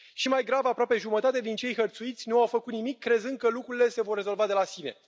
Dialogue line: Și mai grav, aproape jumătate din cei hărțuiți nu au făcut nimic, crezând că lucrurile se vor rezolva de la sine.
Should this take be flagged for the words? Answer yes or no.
no